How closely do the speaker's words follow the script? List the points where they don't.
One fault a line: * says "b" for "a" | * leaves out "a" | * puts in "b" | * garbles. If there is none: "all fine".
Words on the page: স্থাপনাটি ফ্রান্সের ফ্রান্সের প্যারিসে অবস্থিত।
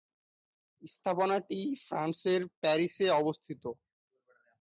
* leaves out "ফ্রান্সের"